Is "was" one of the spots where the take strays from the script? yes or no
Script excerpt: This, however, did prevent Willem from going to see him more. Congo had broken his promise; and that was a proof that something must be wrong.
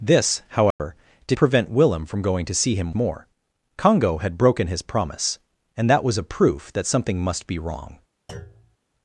no